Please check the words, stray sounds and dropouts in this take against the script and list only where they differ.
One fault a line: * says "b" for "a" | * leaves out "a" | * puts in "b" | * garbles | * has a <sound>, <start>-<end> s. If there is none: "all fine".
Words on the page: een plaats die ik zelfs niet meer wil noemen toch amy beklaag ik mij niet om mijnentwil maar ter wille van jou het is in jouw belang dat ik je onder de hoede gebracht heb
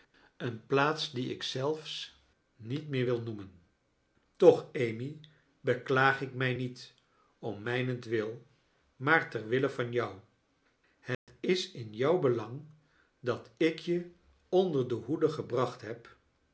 * has a dropout, 11.1-11.3 s